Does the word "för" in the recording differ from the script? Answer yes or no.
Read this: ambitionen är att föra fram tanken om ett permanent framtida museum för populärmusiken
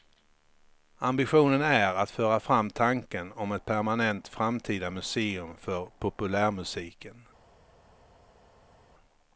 no